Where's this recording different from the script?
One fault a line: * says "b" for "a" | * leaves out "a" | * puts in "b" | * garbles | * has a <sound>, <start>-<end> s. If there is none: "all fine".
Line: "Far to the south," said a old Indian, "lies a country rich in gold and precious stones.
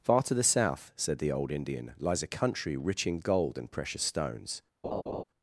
* says "the" for "a"
* has a laugh, 4.8-5.2 s